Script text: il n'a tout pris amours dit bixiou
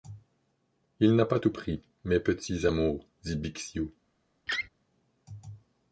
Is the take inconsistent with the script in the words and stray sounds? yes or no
yes